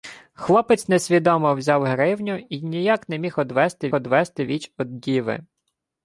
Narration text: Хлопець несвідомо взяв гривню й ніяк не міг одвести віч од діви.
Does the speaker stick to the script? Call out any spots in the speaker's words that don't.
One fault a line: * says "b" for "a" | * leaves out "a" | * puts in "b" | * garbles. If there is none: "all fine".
* puts in "одвести"